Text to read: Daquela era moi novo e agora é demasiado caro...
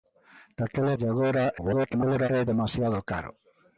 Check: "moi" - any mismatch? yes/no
yes